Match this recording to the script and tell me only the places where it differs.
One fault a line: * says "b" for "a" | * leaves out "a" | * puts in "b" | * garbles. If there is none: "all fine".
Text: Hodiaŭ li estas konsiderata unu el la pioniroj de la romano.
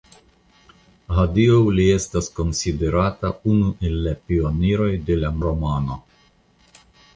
all fine